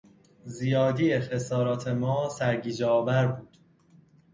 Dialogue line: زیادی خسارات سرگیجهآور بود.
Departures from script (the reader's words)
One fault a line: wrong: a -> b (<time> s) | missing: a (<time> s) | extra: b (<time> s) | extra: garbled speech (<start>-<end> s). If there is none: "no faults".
extra: ما (1.9 s)